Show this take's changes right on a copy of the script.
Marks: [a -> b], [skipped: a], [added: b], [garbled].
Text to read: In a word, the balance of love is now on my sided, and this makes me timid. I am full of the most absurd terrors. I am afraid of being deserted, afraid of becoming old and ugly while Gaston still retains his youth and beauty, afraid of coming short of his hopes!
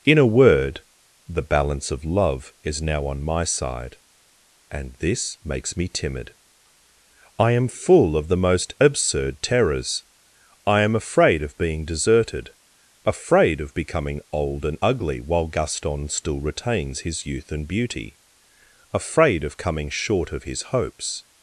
In a word, the balance of love is now on my [sided, -> side] and this makes me timid. I am full of the most absurd terrors. I am afraid of being deserted, afraid of becoming old and ugly while Gaston still retains his youth and beauty, afraid of coming short of his hopes!